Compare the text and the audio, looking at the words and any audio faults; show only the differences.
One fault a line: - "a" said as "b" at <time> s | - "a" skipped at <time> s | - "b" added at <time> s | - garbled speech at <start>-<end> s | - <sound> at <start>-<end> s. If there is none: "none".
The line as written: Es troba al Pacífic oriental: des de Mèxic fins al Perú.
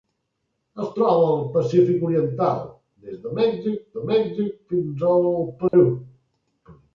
- "de Mèxic" added at 4.0 s
- dropout at 5.7-5.7 s